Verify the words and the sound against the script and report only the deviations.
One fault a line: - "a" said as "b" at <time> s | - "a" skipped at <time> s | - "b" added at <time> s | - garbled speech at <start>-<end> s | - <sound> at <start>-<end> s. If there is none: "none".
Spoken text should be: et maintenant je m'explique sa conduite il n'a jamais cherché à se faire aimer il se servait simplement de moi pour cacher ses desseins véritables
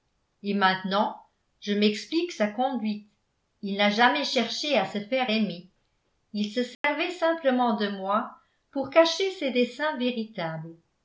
- dropout at 6.7-6.8 s